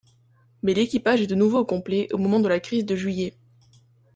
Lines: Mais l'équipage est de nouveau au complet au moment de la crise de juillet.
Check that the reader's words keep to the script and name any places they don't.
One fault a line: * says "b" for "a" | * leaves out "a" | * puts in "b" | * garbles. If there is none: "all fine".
all fine